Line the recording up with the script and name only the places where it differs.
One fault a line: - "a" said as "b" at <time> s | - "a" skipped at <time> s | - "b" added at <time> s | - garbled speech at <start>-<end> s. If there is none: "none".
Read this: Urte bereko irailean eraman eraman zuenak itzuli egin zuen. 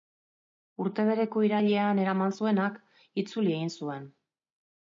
- "eraman" skipped at 2.4 s